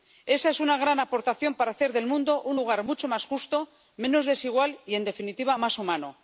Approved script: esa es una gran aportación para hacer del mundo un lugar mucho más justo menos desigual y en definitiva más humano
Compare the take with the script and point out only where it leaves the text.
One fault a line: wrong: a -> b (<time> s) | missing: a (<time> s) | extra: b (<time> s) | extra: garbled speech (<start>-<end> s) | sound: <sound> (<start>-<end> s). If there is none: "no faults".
no faults